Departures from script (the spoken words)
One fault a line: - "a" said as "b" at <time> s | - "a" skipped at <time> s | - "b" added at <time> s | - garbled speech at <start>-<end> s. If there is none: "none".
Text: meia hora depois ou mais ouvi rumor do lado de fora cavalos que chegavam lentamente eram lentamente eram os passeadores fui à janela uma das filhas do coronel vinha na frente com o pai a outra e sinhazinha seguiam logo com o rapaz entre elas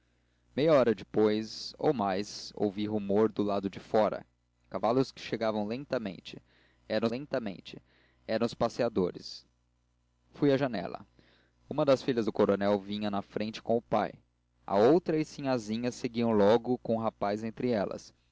none